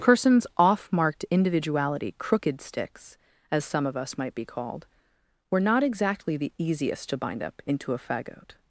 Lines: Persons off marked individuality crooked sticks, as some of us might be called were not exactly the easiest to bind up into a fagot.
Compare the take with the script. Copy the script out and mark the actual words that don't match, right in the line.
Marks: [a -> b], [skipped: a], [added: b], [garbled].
Persons off marked individuality crooked sticks, as some of us might be called were not exactly the easiest to bind up into a fagot.